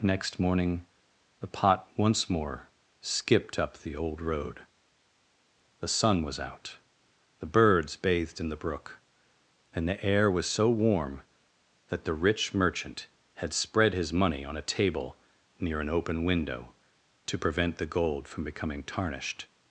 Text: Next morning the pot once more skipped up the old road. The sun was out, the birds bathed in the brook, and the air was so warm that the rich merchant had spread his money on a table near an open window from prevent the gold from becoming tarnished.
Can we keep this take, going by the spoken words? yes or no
no